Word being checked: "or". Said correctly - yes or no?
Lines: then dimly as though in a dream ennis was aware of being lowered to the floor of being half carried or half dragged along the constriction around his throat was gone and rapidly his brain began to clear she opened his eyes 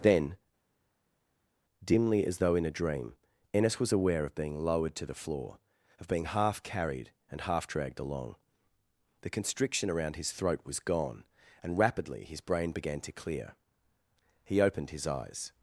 no